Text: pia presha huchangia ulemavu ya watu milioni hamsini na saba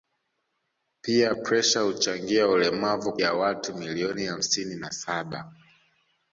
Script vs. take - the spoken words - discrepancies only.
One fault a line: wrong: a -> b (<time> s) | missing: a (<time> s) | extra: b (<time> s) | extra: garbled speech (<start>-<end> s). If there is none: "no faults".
no faults